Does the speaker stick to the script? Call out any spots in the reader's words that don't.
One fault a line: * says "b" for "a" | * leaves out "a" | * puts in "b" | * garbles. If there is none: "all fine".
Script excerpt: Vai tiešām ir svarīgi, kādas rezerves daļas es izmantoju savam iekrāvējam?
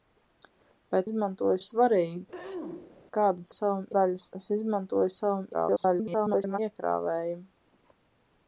* says "izmantoju" for "tiešām"
* says "savam" for "rezerves"
* garbles